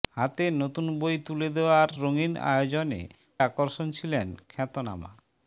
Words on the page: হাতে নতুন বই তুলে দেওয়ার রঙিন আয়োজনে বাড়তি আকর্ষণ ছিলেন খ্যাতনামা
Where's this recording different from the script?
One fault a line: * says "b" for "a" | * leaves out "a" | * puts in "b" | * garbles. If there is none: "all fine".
* leaves out "বাড়তি"